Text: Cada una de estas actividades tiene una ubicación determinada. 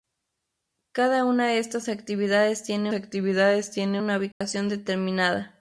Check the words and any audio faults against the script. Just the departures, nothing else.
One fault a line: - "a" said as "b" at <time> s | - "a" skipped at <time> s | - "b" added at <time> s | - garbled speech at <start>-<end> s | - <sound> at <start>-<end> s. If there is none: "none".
- "actividades tiene" added at 2.9 s
- dropout at 4.3-4.4 s